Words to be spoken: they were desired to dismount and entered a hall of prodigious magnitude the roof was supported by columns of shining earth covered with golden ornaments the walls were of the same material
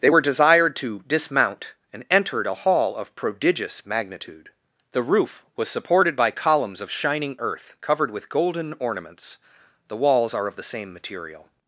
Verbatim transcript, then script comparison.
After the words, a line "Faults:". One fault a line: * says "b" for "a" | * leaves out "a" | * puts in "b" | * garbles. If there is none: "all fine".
they were desired to dismount and entered a hall of prodigious magnitude the roof was supported by columns of shining earth covered with golden ornaments the walls are of the same material
Faults:
* says "are" for "were"